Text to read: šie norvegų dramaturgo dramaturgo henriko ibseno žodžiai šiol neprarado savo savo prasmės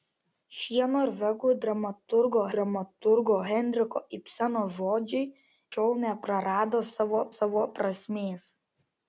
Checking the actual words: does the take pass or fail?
pass